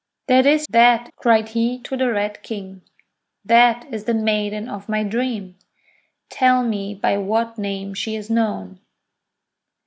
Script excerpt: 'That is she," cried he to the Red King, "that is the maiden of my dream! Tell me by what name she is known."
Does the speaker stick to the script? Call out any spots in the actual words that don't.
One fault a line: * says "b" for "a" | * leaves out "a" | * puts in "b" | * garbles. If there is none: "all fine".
* says "that" for "she"